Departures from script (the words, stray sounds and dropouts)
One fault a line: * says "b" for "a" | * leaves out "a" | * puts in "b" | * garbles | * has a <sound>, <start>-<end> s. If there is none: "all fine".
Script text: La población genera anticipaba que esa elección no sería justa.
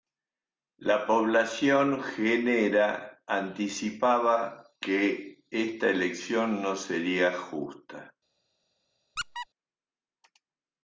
* says "esta" for "esa"
* has a squeak, 9.2-9.5 s